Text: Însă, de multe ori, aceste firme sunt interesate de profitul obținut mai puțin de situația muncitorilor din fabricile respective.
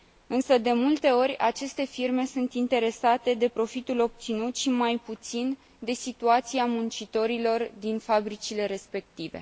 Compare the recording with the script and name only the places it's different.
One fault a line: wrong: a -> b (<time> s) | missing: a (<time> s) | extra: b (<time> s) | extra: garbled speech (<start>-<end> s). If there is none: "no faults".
extra: și (4.6 s)